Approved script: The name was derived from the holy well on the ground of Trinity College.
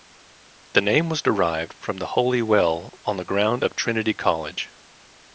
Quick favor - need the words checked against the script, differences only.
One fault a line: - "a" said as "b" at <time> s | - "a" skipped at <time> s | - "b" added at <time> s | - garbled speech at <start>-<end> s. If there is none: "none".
none